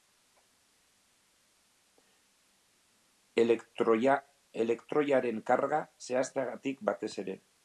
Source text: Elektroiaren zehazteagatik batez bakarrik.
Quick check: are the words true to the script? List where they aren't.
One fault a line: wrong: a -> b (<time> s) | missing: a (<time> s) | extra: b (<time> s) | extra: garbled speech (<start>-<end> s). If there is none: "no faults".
extra: karga (5.5 s)
wrong: bakarrik -> ere (7.3 s)